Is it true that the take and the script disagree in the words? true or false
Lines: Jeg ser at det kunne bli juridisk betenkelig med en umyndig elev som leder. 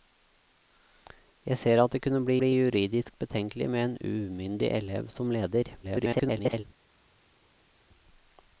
true